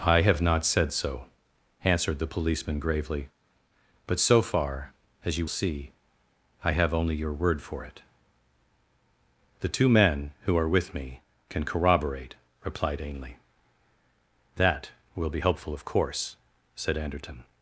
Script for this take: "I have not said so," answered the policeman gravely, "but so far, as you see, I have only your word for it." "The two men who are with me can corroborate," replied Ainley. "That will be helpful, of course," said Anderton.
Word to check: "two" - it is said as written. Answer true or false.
true